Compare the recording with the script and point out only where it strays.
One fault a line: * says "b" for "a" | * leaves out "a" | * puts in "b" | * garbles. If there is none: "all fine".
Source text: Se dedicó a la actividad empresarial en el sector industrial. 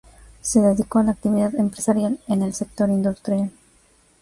all fine